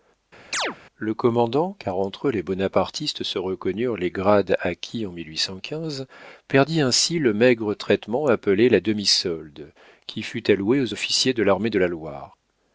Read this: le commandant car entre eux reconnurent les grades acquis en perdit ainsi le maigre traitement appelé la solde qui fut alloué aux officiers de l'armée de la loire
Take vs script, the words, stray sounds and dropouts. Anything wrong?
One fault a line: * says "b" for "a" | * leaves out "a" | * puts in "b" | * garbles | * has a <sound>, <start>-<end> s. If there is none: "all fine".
* has a chirp, 0.5-0.8 s
* puts in "les bonapartistes se"
* puts in "demi"